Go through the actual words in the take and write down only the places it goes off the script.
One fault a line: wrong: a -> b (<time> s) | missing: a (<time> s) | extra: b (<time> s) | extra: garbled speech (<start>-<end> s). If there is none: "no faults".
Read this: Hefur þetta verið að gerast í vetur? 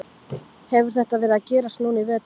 extra: núna (1.9 s)